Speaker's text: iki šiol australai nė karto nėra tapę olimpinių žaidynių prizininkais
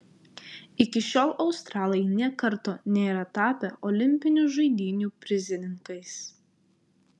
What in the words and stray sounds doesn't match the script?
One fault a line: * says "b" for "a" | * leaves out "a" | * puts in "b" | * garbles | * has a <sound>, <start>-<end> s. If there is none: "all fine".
all fine